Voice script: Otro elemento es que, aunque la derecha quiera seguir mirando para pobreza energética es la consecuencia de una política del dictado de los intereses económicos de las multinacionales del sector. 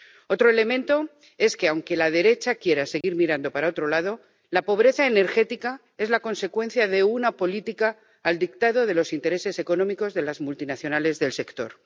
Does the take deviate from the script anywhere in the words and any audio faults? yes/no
yes